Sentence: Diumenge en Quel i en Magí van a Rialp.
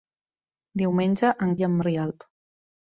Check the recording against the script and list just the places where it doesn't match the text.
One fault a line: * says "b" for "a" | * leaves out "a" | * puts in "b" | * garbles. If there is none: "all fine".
* leaves out "Quel"
* leaves out "Magí van"